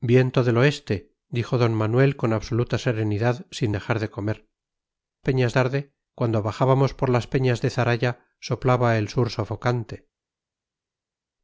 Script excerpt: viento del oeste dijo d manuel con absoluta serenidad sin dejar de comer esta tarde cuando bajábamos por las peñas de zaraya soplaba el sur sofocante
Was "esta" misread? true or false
true